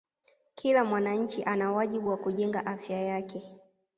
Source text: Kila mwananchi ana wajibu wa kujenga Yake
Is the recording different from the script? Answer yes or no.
yes